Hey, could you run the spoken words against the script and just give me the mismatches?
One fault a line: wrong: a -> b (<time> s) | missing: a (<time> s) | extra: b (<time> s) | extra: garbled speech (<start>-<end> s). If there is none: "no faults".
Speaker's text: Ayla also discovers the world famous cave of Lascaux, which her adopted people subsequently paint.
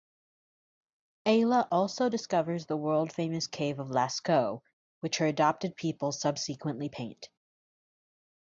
no faults